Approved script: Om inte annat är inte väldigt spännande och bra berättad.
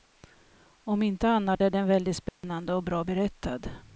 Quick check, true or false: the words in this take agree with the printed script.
false